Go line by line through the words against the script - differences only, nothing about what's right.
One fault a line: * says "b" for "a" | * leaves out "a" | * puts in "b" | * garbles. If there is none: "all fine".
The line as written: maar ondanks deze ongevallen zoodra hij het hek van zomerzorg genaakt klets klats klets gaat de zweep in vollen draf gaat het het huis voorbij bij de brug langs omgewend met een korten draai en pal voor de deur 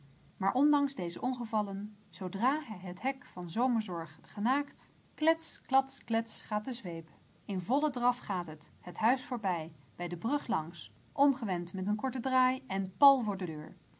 all fine